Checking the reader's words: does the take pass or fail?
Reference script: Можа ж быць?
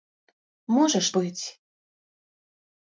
pass